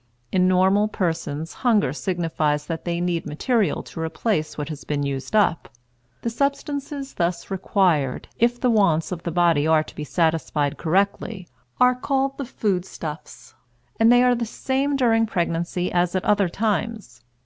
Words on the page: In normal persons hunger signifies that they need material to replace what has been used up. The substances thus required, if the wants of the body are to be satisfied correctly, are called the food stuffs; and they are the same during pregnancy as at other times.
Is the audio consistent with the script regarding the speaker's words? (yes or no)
yes